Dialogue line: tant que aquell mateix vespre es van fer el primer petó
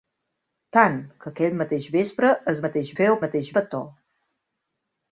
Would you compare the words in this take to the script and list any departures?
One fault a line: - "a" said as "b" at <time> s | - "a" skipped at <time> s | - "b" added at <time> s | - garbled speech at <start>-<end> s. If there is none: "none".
- "van" said as "mateix" at 2.6 s
- "primer" said as "mateix" at 3.2 s